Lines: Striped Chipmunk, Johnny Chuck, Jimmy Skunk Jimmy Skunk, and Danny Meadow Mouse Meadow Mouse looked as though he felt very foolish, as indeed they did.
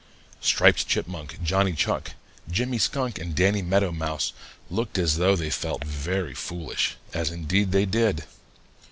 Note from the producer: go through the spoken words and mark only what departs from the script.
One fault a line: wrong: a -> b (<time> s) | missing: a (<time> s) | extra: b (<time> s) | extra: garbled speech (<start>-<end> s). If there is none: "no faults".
missing: Jimmy Skunk (3.2 s)
missing: Meadow Mouse (4.3 s)
wrong: he -> they (5.3 s)